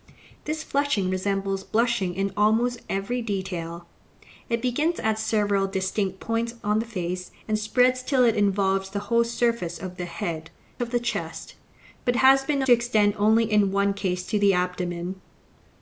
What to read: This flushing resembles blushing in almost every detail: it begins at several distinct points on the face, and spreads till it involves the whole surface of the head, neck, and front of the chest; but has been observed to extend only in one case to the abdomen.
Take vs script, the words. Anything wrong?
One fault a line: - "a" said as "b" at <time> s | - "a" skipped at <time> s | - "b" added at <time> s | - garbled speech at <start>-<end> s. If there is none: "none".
- "neck and front" skipped at 10.5 s
- "observed" skipped at 12.6 s